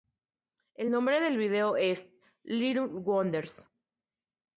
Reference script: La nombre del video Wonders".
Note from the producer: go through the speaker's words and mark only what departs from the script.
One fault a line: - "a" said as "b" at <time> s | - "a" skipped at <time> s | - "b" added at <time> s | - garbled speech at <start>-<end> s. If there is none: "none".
- "La" said as "El" at 0.7 s
- "es Little" added at 1.8 s